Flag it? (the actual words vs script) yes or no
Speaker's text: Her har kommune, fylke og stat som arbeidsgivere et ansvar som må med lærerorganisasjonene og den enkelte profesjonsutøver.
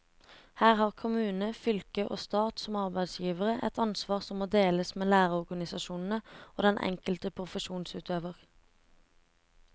yes